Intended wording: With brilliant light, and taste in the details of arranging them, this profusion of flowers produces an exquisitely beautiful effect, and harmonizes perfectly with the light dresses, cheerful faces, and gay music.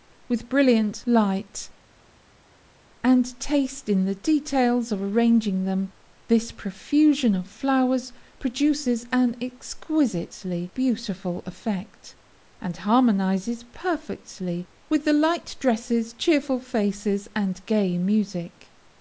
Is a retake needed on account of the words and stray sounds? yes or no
no